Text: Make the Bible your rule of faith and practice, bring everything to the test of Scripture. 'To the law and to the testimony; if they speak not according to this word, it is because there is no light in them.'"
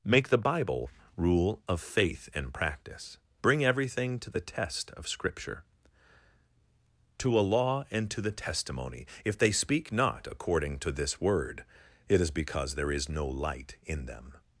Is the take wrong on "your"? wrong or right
wrong